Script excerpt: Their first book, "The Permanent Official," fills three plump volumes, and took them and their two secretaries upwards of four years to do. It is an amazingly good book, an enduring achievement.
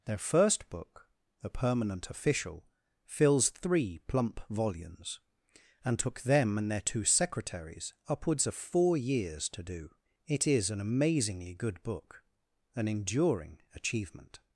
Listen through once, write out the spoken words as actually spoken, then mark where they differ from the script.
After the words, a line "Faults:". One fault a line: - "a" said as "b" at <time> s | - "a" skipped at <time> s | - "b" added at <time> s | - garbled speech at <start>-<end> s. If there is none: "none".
Their first book, "The Permanent Official," fills three plump volumes, and took them and their two secretaries upwards of four years to do. It is an amazingly good book, an enduring achievement.
Faults:
none